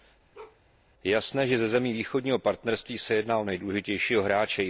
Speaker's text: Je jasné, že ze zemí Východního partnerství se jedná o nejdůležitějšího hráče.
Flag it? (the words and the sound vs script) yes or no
yes